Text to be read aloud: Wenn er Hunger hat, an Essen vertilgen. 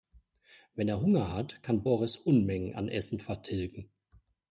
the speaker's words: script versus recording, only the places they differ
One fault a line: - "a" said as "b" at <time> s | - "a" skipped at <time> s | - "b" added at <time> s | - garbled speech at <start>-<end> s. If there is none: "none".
- "kann Boris Unmengen" added at 1.6 s